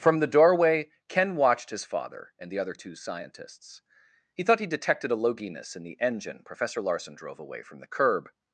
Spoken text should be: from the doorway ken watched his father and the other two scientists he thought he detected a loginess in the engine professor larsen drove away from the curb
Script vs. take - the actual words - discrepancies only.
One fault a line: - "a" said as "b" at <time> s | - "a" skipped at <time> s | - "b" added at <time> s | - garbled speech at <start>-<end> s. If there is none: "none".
none